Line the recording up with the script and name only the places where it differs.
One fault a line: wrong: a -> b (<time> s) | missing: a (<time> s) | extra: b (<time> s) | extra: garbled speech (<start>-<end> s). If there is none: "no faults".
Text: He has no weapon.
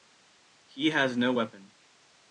no faults